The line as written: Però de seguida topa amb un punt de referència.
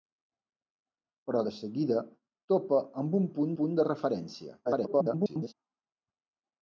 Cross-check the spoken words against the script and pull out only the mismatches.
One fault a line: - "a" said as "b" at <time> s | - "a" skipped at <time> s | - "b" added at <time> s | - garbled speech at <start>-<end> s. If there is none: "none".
- "punt" added at 3.6 s
- garbled speech at 4.6-5.5 s